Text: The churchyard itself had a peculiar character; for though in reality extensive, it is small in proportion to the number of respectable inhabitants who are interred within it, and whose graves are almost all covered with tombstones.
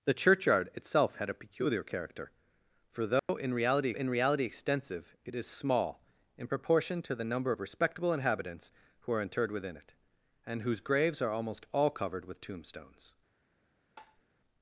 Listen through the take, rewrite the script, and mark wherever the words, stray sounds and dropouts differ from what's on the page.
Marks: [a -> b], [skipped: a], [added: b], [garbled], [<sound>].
The churchyard itself had a peculiar character; for though [dropout] in reality [added: in reality] extensive, it is small in proportion to the number of respectable inhabitants who are interred within it, and whose graves are almost all covered with tombstones. [tap]